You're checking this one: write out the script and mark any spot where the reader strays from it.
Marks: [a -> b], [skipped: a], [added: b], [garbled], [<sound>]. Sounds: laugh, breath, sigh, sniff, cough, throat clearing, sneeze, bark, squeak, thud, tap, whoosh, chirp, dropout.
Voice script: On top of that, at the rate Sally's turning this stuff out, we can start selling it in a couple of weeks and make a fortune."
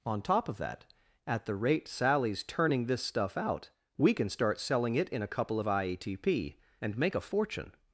On top of that, at the rate Sally's turning this stuff out, we can start selling it in a couple of [weeks -> ietp] and make a fortune."